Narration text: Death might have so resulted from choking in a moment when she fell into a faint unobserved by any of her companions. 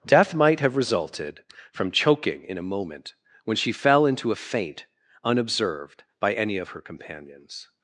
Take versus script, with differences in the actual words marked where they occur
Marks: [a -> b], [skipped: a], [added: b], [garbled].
Death might have [skipped: so] resulted from choking in a moment when she fell into a faint unobserved by any of her companions.